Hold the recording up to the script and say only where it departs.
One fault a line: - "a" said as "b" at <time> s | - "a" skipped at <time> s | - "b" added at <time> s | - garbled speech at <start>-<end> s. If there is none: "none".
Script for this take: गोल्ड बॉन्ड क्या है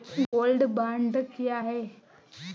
none